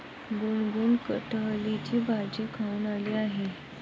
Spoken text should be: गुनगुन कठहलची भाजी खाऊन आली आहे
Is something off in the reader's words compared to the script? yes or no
no